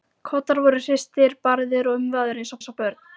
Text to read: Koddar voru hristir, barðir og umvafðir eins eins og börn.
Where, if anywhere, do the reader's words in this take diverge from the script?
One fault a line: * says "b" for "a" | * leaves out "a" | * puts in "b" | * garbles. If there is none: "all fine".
all fine